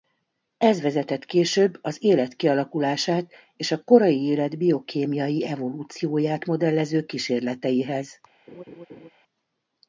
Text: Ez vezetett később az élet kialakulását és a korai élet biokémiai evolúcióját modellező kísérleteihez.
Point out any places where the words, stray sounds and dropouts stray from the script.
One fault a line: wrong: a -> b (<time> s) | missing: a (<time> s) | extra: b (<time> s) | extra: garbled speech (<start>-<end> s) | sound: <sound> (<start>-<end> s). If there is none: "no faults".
sound: laugh (8.5-9.1 s)